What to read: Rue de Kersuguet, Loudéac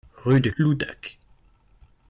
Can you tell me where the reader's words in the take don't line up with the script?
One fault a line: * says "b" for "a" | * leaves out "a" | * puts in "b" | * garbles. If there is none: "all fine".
* leaves out "Kersuguet"